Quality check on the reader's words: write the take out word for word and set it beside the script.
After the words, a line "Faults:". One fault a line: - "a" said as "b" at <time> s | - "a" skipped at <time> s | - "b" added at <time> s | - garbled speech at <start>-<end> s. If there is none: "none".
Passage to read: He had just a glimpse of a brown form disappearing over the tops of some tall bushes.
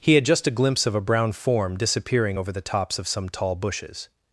He had just a glimpse of a brown form disappearing over the tops of some tall bushes.
Faults:
none